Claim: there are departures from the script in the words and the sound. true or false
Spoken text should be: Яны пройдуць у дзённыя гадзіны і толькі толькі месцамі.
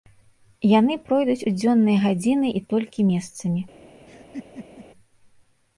true